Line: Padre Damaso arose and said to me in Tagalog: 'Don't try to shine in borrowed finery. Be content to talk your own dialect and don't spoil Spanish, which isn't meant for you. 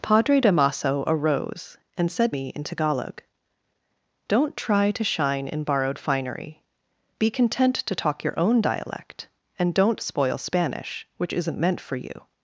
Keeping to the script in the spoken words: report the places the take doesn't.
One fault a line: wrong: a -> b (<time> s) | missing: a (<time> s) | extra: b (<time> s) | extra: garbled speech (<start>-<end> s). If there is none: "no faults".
missing: to (2.3 s)